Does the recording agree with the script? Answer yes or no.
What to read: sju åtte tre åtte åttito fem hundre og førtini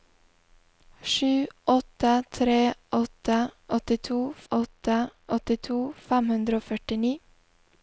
no